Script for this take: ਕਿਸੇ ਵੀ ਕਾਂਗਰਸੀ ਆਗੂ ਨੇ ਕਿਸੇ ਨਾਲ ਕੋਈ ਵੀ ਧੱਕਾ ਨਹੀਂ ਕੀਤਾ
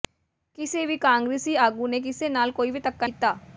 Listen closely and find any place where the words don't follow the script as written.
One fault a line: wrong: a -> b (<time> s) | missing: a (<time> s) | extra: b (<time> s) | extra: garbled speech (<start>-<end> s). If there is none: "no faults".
missing: ਨਹੀਂ (3.1 s)